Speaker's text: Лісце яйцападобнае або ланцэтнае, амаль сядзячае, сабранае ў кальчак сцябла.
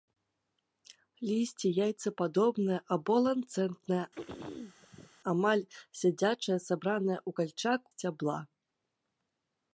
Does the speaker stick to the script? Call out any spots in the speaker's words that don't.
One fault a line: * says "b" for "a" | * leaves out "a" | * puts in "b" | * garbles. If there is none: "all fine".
all fine